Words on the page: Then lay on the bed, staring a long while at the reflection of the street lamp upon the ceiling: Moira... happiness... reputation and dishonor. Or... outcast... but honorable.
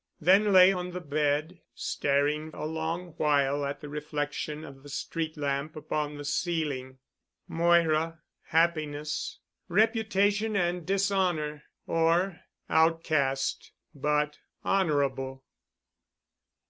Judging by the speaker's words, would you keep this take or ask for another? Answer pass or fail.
pass